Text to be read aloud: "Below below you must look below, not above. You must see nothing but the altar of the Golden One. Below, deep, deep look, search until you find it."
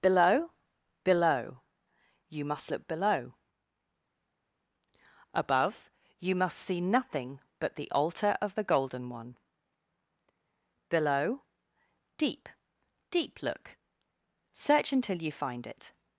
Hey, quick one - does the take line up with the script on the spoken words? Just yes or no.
no